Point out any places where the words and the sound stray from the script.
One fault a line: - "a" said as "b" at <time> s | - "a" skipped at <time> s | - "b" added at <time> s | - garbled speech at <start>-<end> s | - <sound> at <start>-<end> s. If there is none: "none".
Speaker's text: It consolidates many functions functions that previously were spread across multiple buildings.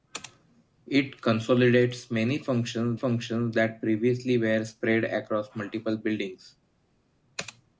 none